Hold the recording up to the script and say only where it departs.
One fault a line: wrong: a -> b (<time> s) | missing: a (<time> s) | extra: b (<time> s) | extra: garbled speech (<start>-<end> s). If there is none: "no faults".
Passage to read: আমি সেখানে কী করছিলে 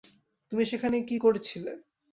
wrong: আমি -> তুমি (0.5 s)